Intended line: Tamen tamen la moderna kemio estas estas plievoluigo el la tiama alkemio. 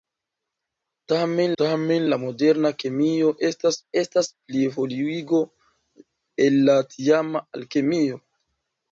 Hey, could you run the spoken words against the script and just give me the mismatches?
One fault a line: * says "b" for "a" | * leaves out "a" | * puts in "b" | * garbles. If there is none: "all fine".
all fine